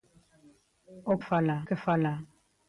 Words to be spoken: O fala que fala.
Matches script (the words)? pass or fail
pass